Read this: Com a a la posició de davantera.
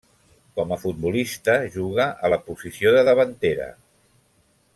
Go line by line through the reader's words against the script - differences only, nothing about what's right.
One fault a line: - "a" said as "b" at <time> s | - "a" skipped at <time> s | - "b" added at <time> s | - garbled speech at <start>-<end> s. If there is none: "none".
- "futbolista juga" added at 0.8 s